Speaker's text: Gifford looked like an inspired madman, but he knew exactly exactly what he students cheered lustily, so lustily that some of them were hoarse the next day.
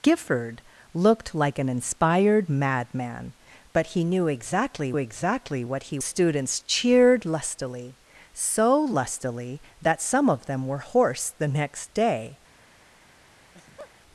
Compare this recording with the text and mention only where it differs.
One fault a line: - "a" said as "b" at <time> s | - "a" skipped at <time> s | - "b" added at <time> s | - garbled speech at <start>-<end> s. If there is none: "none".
none